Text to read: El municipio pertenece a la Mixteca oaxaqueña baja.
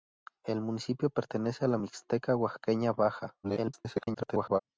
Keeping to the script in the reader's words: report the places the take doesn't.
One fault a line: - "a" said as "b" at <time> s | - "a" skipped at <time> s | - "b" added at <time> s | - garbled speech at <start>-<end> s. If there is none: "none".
- garbled speech at 3.4-4.6 s